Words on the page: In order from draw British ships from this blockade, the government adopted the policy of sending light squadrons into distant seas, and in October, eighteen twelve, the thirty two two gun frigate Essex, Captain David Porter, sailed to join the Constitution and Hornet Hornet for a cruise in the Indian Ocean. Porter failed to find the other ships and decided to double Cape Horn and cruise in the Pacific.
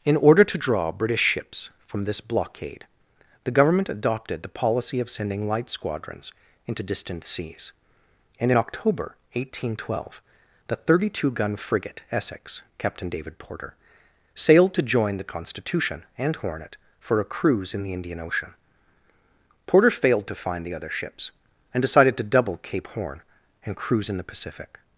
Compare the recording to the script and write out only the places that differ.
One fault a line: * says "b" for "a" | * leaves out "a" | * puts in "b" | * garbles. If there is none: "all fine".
* says "to" for "from"
* leaves out "two"
* leaves out "Hornet"